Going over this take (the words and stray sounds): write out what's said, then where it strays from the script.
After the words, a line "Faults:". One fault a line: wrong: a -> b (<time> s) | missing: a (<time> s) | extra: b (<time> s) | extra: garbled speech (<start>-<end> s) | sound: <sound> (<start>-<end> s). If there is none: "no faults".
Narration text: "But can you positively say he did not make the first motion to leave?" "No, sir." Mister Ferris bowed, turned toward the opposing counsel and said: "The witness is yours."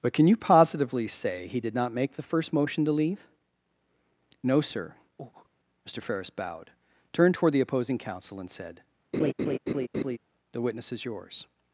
"But can you positively say he did not make the first motion to leave?" "No, sir." Mister Ferris bowed, turned toward the opposing counsel and said: "The witness is yours."
Faults:
sound: breath (5.2-5.5 s)
sound: laugh (9.1-10.2 s)